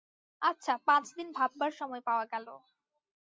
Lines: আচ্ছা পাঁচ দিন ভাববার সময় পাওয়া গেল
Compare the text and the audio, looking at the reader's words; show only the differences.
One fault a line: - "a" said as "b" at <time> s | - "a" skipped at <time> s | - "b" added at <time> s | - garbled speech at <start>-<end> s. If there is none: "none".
none